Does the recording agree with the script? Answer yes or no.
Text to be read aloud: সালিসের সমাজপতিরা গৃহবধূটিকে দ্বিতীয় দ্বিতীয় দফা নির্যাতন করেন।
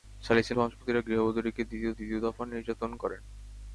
yes